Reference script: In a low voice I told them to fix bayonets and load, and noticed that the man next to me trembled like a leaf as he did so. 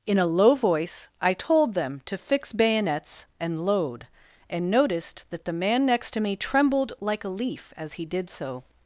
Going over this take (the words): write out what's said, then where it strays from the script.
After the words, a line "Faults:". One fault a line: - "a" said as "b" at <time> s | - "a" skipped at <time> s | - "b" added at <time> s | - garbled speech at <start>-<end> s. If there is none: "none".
In a low voice I told them to fix bayonets and load, and noticed that the man next to me trembled like a leaf as he did so.
Faults:
none